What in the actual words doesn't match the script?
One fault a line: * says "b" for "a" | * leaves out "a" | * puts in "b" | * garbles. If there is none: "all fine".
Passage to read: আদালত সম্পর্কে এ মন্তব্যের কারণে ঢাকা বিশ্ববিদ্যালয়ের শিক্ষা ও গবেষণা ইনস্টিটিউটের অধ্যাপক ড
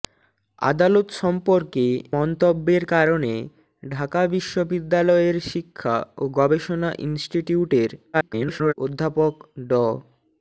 * leaves out "এ"
* garbles